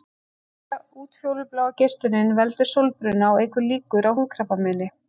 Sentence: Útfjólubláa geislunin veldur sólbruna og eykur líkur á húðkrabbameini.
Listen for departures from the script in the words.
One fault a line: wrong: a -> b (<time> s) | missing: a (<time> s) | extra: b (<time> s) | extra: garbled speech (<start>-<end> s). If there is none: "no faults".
no faults